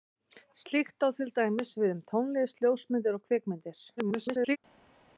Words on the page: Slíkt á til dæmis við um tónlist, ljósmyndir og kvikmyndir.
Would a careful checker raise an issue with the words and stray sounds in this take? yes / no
yes